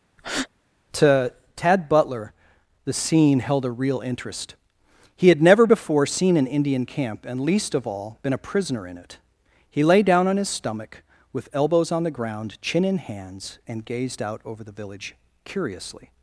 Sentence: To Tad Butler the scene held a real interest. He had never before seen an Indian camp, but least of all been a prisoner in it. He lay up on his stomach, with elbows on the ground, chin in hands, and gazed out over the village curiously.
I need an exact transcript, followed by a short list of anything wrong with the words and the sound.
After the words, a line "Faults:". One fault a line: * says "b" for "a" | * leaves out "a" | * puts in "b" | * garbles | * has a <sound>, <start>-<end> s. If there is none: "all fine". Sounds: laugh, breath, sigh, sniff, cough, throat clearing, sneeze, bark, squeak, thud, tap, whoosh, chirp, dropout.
To Tad Butler the scene held a real interest. He had never before seen an Indian camp, and least of all been a prisoner in it. He lay down on his stomach, with elbows on the ground, chin in hands, and gazed out over the village curiously.
Faults:
* has a breath, 0.2-0.5 s
* says "and" for "but"
* says "down" for "up"